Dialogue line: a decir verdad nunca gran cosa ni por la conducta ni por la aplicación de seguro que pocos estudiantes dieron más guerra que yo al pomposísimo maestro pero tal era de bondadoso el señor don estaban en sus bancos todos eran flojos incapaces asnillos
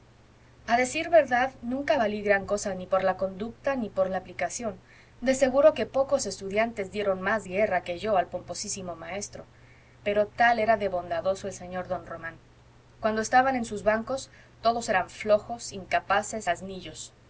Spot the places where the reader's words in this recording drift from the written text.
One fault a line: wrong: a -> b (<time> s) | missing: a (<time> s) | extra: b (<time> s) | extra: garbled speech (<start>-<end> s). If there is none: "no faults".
extra: valí (2.0 s)
extra: román cuando (12.0 s)